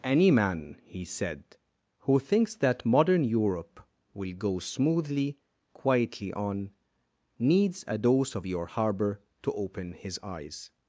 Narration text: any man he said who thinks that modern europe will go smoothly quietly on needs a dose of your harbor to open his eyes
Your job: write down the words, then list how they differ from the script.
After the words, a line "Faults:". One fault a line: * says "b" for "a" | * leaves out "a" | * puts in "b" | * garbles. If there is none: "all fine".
any man he said who thinks that modern europe will go smoothly quietly on needs a dose of your harbor to open his eyes
Faults:
all fine